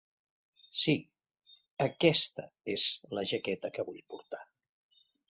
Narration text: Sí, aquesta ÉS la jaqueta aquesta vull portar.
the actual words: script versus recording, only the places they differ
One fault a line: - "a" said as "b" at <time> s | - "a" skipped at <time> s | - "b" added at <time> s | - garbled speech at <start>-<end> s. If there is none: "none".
- "aquesta" said as "que" at 3.8 s